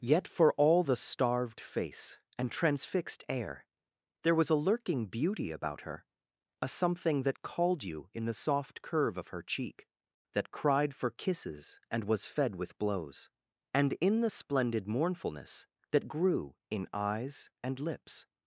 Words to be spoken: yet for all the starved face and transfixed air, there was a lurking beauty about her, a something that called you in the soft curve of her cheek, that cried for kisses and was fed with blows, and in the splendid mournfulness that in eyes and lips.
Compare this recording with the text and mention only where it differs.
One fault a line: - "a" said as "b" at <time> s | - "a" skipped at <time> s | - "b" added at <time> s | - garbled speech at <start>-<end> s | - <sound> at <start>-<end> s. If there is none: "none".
- "grew" added at 16.1 s